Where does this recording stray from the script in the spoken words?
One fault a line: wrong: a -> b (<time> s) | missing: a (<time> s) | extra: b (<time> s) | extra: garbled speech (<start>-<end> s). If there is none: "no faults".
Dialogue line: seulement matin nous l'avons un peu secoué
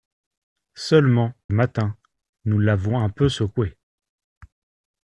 no faults